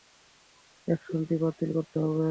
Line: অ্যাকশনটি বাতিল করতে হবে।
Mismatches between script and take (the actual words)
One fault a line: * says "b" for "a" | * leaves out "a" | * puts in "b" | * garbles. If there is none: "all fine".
all fine